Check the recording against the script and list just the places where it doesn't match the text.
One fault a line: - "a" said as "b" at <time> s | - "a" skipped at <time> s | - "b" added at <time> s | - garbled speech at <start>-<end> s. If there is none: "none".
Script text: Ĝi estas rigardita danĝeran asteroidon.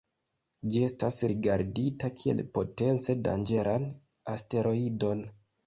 - "kiel potence" added at 2.2 s